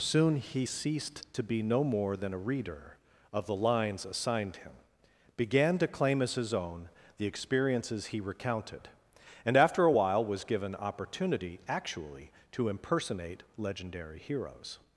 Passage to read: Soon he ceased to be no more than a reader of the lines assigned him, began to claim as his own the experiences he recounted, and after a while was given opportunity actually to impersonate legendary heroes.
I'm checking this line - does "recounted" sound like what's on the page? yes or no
yes